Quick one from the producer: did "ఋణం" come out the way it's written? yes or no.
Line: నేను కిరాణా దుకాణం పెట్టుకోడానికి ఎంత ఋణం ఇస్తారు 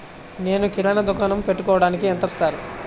no